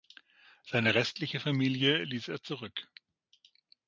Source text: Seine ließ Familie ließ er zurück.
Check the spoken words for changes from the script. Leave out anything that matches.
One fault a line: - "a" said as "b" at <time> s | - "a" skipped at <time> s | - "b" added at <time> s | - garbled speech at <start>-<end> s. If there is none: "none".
- "ließ" said as "restliche" at 0.9 s